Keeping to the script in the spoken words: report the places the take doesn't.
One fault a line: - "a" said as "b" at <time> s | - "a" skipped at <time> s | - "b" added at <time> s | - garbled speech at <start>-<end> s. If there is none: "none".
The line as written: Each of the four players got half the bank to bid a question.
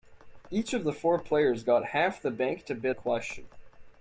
none